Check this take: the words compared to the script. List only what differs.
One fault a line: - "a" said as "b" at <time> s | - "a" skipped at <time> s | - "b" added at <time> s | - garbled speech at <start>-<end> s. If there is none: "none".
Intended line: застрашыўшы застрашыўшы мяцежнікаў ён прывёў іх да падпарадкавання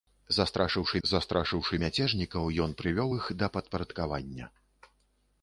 none